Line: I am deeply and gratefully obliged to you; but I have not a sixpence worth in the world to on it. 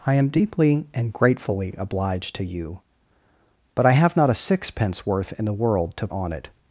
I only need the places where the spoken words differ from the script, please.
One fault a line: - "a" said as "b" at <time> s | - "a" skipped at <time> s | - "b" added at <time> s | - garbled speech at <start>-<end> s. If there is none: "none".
none